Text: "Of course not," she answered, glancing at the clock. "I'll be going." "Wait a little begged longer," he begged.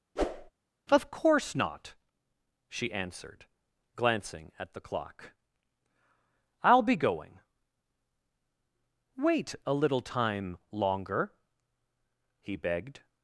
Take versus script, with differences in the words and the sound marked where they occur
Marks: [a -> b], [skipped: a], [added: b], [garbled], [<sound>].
[whoosh] "Of course not," she answered, glancing at the clock. "I'll be going." "Wait a little [begged -> time] longer," he begged.